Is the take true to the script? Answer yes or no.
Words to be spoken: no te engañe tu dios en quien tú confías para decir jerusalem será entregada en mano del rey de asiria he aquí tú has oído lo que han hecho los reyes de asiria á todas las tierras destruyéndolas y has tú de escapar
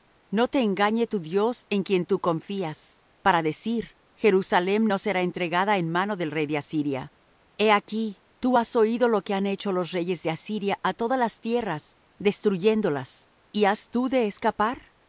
no